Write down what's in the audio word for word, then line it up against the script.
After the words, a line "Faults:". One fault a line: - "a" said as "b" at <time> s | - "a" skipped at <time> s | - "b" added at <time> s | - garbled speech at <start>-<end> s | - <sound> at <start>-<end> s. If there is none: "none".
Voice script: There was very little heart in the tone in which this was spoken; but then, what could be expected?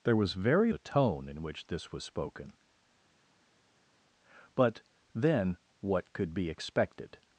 There was very the tone in which this was spoken; but then, what could be expected?
Faults:
- "little heart in" skipped at 0.7 s